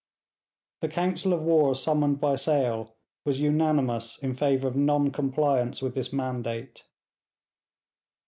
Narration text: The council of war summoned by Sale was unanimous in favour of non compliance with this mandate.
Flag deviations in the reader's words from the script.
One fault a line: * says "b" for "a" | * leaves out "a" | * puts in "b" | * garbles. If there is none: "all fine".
all fine